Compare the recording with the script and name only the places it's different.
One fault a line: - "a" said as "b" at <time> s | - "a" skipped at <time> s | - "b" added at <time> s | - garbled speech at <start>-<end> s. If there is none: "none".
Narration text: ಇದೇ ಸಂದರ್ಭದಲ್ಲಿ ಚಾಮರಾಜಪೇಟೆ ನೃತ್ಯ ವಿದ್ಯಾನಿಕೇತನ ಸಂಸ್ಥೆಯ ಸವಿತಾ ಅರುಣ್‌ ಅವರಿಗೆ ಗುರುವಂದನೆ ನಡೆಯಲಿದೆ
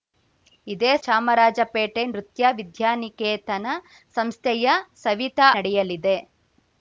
- "ಸಂದರ್ಭದಲ್ಲಿ" skipped at 0.9 s
- "ಅರುಣ್ ಅವರಿಗೆ ಗುರುವಂದನೆ" skipped at 5.5 s